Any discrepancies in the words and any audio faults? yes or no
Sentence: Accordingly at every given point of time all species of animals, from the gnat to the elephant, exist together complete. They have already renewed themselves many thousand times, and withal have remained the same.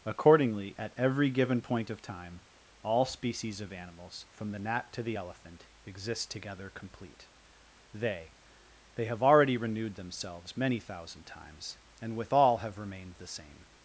yes